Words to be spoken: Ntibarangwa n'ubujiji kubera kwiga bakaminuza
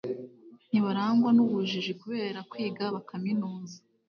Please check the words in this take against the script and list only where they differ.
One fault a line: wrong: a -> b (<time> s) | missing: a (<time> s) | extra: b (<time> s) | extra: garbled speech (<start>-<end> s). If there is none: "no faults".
no faults